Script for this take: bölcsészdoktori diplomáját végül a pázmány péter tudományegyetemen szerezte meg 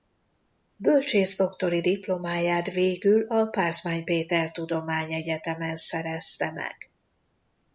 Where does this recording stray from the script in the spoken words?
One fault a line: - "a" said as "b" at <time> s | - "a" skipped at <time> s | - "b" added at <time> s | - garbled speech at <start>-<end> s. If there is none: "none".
none